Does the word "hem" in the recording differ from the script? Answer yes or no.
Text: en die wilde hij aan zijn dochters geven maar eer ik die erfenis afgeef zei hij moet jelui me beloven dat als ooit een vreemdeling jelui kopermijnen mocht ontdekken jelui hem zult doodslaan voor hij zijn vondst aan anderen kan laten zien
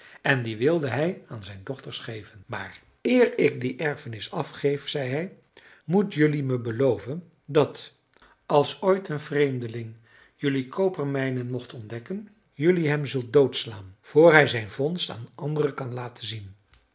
no